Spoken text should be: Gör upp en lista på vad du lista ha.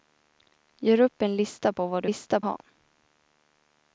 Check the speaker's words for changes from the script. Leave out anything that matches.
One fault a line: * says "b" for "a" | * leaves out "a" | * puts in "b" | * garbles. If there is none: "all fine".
all fine